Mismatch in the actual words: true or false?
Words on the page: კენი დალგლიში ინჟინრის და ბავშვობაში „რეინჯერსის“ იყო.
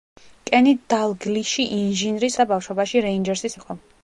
false